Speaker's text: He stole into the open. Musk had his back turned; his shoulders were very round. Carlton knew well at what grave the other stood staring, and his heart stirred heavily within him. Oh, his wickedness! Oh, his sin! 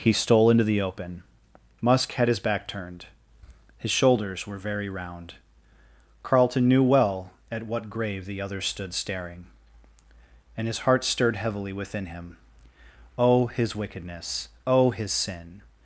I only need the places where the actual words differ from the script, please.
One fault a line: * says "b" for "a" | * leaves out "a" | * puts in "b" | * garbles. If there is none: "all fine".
all fine